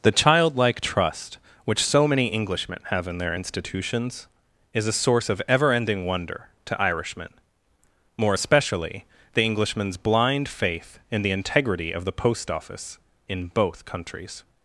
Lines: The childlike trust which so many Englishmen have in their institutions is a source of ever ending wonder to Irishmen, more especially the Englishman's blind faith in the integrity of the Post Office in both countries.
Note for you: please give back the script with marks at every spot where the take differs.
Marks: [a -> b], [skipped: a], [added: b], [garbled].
The childlike trust which so many Englishmen have in their institutions is a source of ever ending wonder to Irishmen, more especially the Englishman's blind faith in the integrity of the Post Office in both countries.